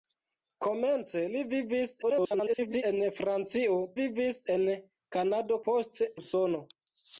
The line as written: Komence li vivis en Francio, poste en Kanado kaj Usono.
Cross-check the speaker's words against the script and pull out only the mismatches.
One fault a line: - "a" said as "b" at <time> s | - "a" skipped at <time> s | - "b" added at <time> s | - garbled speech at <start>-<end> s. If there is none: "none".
- garbled speech at 2.0-2.8 s
- "poste" said as "vivis" at 4.0 s
- "kaj" said as "poste" at 5.7 s